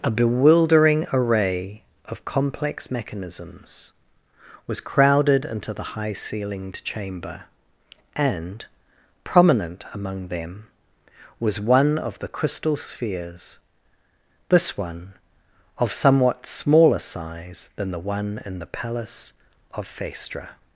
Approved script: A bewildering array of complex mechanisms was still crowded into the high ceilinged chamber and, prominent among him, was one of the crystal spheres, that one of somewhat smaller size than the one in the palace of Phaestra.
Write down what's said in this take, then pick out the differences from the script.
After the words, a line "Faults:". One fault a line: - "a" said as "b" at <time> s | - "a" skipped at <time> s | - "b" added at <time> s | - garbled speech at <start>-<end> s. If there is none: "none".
A bewildering array of complex mechanisms was crowded into the high ceilinged chamber and, prominent among them, was one of the crystal spheres, this one of somewhat smaller size than the one in the palace of Phaestra.
Faults:
- "still" skipped at 4.8 s
- "him" said as "them" at 10.3 s
- "that" said as "this" at 14.5 s